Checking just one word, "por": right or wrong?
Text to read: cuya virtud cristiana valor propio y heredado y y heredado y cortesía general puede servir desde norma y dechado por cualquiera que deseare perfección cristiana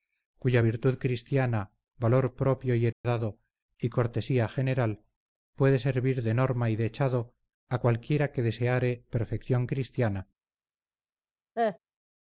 wrong